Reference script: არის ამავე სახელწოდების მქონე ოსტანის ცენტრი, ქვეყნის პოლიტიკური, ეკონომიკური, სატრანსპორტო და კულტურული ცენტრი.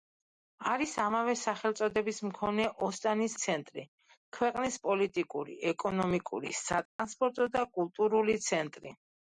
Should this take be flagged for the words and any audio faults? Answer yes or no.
yes